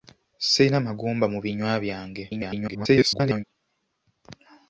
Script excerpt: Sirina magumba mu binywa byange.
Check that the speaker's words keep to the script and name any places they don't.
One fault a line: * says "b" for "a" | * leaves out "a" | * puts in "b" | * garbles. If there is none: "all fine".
* garbles